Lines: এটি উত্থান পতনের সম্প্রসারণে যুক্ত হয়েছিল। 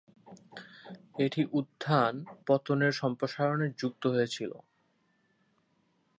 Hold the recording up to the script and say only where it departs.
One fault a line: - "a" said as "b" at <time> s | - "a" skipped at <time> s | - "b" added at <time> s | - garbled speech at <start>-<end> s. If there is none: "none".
none